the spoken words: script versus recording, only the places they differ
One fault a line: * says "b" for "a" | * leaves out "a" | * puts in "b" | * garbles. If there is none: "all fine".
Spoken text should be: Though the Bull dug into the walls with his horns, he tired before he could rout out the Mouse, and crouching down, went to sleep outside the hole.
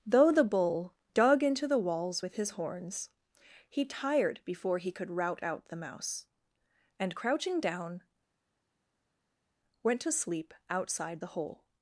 all fine